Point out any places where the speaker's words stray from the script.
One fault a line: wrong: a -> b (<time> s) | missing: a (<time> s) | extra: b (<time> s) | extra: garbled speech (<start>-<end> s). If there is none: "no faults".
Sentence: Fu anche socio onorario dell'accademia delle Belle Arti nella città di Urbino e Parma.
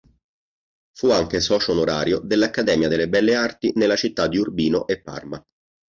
no faults